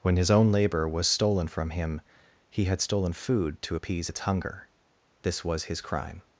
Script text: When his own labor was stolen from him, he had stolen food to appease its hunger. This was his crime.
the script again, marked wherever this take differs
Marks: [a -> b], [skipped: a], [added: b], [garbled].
When his own labor was stolen from him, he had stolen food to appease its hunger. This was his crime.